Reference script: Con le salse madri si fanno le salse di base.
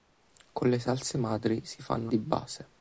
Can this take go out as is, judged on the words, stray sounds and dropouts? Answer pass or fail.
fail